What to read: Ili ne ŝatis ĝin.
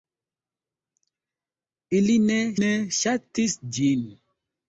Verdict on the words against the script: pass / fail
fail